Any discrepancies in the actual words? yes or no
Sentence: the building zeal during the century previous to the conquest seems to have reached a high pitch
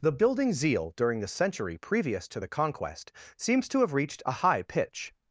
no